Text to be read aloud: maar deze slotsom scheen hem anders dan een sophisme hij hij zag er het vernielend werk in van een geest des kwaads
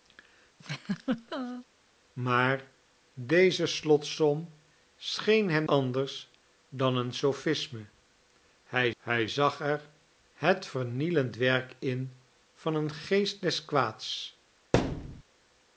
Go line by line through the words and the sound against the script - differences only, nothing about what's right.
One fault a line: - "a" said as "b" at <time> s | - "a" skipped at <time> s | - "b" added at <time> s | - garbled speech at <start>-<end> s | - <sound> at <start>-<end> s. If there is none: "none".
- laugh at 0.6-1.7 s
- thud at 14.7-15.2 s